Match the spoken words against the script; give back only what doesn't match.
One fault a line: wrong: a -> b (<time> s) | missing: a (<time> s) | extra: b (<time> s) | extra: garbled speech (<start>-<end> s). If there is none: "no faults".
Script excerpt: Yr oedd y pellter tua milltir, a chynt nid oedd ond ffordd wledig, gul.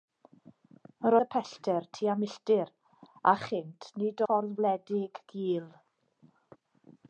missing: oedd (1.1 s)
missing: oedd ond (4.2 s)